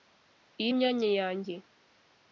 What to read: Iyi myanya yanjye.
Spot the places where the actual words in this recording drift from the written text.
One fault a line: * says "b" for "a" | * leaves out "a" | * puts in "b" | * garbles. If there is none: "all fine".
all fine